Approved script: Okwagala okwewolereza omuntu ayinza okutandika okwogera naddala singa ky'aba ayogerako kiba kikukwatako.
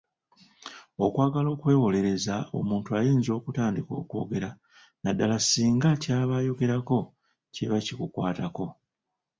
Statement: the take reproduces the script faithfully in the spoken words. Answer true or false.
true